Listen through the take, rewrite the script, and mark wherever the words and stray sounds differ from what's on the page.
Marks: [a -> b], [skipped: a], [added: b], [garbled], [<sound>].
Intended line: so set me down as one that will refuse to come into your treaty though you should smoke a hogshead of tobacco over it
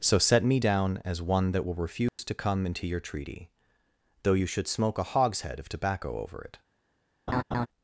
so set me down as one that will refuse [dropout] to come into your treaty though you should smoke a hogshead of tobacco over it [laugh]